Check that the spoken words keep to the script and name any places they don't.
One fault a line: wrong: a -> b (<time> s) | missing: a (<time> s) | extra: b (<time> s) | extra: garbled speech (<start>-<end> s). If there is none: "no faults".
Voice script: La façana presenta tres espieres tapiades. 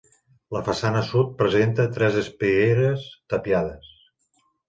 extra: sud (1.1 s)